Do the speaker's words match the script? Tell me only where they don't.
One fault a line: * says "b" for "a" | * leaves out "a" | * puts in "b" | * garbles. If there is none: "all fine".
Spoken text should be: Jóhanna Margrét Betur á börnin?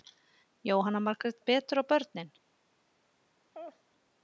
all fine